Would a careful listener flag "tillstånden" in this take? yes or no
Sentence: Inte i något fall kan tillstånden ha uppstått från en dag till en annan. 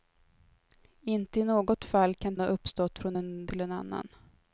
yes